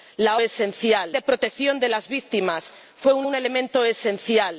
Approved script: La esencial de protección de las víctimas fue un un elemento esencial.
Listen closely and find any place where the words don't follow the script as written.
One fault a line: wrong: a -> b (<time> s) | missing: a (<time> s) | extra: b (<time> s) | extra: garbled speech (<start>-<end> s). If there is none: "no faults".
no faults